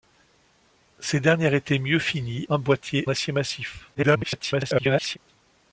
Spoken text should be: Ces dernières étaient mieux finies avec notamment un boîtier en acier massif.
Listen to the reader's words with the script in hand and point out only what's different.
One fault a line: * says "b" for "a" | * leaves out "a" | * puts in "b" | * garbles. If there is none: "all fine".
* leaves out "avec notamment"
* leaves out "en"
* garbles